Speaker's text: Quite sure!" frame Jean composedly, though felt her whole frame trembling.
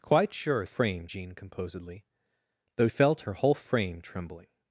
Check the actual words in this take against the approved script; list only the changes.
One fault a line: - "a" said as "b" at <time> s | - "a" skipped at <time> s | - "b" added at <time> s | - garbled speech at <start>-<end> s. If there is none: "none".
none